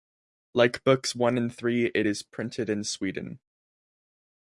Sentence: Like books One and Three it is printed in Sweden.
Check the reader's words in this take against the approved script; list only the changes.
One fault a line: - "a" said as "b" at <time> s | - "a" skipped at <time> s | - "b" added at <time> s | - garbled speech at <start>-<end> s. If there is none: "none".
none